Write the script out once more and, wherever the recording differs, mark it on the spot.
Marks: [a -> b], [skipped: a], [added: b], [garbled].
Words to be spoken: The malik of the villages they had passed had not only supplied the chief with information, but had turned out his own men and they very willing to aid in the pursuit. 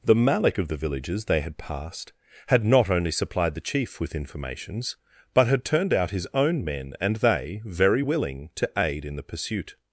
The malik of the villages they had passed had not only supplied the chief with [information, -> informations] but had turned out his own men and they very willing to aid in the pursuit.